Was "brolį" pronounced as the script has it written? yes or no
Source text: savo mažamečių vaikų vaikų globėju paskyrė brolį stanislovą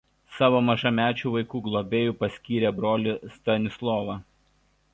yes